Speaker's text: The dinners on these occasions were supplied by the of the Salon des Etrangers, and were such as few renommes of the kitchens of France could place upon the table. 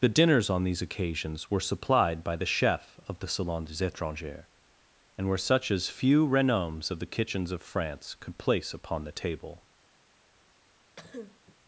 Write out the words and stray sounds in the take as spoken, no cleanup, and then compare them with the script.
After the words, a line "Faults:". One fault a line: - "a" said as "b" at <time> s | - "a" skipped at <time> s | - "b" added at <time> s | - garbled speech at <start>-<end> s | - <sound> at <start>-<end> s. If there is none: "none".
The dinners on these occasions were supplied by the chef of the Salon des Etrangers, and were such as few renommes of the kitchens of France could place upon the table.
Faults:
- "chef" added at 2.5 s
- cough at 11.0-11.6 s